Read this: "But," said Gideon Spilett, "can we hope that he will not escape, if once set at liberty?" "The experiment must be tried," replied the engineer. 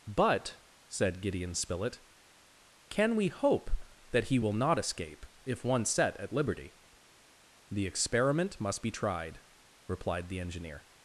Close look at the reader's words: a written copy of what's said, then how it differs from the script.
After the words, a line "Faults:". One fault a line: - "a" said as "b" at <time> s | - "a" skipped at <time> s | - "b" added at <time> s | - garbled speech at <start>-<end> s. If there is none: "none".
"But," said Gideon Spilett, "can we hope that he will not escape, if once set at liberty?" "The experiment must be tried," replied the engineer.
Faults:
none